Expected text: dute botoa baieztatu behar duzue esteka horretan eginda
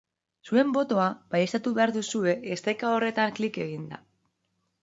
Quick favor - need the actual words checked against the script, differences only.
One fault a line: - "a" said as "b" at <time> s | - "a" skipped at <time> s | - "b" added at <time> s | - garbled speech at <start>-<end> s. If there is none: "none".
- "dute" said as "zuen" at 0.5 s
- "klik" added at 3.4 s